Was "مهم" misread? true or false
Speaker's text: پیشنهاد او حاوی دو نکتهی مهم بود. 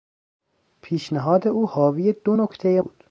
true